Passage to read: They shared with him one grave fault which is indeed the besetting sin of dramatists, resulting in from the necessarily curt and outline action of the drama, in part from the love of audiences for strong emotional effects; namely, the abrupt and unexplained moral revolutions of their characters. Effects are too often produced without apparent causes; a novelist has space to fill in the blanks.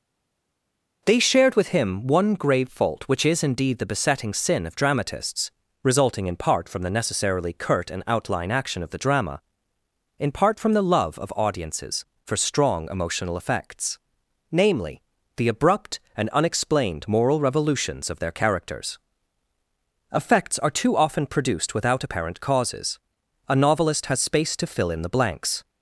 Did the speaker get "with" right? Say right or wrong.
right